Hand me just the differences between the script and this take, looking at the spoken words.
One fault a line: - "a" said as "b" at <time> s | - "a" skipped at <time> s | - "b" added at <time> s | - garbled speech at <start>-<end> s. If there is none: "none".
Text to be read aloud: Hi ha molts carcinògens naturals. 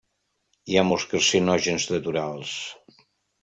none